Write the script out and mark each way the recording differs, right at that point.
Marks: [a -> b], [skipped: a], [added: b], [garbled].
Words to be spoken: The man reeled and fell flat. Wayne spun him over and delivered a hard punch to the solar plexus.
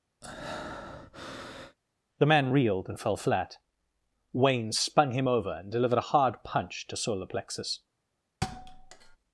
The man reeled and fell flat. Wayne spun him over and delivered a hard punch to [skipped: the] solar plexus.